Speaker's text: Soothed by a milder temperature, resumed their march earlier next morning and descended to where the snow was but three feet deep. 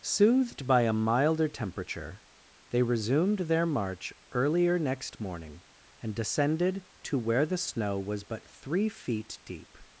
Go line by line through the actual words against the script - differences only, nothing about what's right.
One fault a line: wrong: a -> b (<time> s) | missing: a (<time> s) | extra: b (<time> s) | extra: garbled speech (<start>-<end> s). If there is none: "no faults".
extra: they (2.7 s)